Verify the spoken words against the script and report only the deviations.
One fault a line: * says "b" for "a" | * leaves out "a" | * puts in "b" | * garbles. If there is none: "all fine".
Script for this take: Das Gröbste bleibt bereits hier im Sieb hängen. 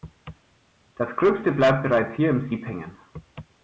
all fine